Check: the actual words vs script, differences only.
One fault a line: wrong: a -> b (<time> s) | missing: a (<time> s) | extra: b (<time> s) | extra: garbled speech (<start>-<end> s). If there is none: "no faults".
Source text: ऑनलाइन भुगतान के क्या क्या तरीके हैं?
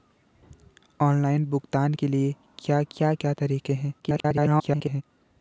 extra: क्या (3.1 s)
extra: garbled speech (4.0-5.0 s)